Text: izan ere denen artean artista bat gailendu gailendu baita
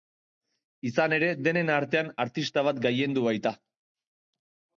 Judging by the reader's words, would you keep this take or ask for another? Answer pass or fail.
fail